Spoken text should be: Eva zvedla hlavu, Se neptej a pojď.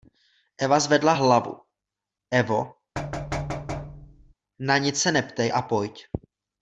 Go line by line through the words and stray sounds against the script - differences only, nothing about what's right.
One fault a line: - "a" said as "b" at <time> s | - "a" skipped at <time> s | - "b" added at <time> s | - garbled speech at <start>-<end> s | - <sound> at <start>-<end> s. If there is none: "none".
- "Evo na nic" added at 2.3 s
- thud at 3.0-4.3 s